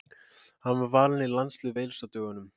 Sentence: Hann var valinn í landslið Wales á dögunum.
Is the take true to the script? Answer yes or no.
yes